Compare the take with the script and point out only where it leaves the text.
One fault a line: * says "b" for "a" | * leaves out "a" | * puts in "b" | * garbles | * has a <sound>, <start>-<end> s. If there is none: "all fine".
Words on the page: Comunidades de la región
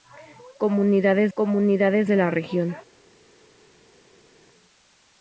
* puts in "comunidades"